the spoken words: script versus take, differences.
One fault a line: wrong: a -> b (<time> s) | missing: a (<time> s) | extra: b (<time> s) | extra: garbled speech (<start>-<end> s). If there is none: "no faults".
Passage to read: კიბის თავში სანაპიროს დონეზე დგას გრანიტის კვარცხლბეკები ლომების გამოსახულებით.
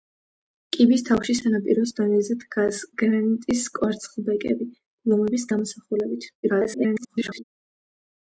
extra: garbled speech (6.4-7.4 s)